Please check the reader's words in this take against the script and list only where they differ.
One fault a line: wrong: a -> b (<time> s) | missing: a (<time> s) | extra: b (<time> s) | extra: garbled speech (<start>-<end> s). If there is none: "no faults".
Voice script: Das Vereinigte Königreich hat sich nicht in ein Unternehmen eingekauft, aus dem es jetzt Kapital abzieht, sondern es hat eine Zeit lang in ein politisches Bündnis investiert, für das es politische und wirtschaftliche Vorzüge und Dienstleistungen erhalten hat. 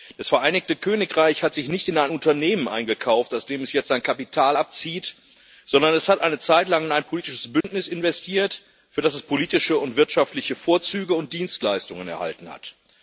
extra: sein (3.9 s)